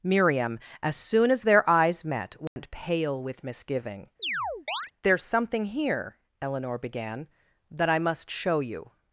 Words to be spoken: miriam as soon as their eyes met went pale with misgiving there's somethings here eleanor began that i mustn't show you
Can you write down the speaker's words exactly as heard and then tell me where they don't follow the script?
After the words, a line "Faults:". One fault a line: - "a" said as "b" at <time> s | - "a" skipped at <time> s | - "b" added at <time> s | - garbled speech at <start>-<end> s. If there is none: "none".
miriam as soon as their eyes met went pale with misgiving there's something here eleanor began that i must show you
Faults:
- "somethings" said as "something" at 5.2 s
- "mustn't" said as "must" at 8.0 s